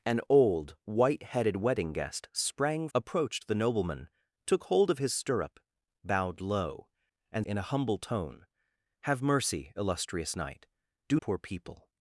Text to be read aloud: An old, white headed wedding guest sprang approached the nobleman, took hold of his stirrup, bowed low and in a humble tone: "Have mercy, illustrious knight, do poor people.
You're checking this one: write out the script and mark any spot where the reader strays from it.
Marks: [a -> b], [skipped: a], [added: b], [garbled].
An old, white headed wedding guest sprang approached the nobleman, took hold of his stirrup, bowed low and in a humble tone: "Have mercy, illustrious knight, do poor people.